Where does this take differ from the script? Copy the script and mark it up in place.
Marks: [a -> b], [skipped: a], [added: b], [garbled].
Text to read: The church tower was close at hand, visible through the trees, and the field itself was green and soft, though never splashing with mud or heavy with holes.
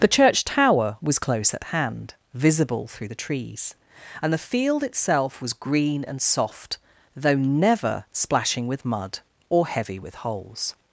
The church tower was close at hand, visible through the trees, and the field itself was green and soft, though never splashing with mud or heavy with holes.